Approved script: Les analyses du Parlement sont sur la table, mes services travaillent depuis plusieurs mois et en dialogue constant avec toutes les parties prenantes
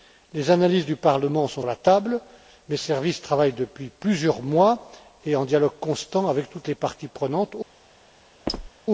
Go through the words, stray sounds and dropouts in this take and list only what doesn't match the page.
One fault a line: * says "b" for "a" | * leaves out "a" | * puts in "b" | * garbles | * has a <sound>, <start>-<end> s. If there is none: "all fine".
* leaves out "sur"
* has a squeak, 8.5-8.7 s